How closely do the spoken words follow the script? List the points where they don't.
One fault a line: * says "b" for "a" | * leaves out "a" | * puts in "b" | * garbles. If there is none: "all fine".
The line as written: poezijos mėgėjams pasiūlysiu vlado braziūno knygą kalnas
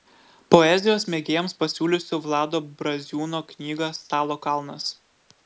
* puts in "stalo"